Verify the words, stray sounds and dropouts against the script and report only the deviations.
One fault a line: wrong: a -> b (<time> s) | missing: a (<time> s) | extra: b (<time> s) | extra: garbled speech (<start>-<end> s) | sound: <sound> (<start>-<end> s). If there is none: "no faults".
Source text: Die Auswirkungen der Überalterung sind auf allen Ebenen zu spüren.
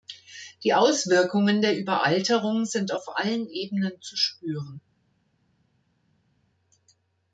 no faults